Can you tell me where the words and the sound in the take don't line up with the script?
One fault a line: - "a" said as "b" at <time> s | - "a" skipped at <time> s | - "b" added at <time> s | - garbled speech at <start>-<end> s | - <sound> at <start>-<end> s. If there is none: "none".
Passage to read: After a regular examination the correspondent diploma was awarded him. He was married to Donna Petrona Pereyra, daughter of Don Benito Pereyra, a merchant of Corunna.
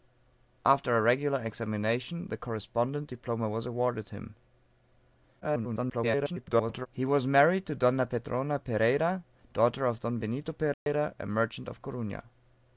- garbled speech at 5.4-6.9 s
- dropout at 10.7-10.9 s